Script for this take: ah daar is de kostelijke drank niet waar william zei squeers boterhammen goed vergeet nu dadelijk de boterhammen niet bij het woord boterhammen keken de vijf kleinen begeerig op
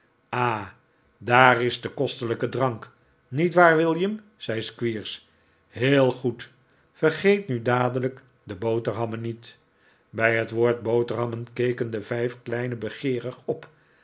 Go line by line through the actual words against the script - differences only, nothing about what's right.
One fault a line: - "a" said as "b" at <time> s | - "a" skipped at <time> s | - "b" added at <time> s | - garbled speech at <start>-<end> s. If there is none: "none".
- "boterhammen" said as "heel" at 5.7 s